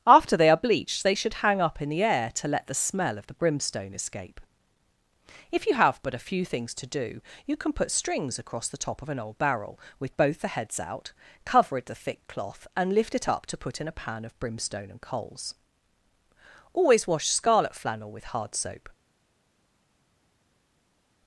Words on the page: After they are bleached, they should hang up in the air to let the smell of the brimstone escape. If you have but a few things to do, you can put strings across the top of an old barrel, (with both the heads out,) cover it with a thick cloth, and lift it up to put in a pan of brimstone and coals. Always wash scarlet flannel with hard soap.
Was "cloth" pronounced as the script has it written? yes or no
yes